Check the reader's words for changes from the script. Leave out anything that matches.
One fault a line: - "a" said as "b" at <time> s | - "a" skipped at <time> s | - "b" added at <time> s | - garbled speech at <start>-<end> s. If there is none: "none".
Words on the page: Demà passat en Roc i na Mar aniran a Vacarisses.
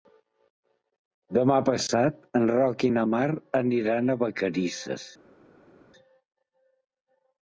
none